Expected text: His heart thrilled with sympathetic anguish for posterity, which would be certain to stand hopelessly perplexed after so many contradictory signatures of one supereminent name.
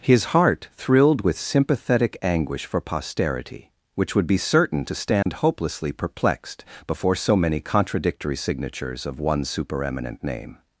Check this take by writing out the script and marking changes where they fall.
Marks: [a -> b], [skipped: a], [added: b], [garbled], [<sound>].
His heart thrilled with sympathetic anguish for posterity, which would be certain to stand [dropout] hopelessly perplexed [after -> before] so many contradictory signatures of one supereminent name.